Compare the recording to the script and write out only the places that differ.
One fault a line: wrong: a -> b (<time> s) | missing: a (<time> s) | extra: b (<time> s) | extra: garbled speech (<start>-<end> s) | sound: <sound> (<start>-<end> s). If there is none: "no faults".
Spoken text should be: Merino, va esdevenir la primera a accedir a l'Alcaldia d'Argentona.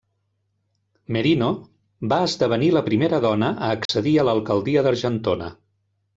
extra: dona (3.3 s)
sound: dropout (3.9-3.9 s)